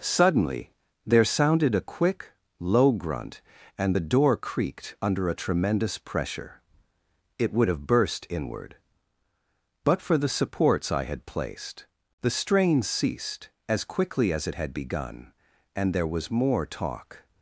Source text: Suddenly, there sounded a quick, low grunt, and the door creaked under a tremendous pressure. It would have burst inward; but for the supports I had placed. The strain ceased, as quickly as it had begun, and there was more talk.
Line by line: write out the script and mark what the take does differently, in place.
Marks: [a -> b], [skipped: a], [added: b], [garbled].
Suddenly, there sounded a quick, low grunt, and the door creaked under a tremendous pressure. It would have burst inward; but for the supports I had placed. The strain ceased, as quickly as it had begun, and there was more talk.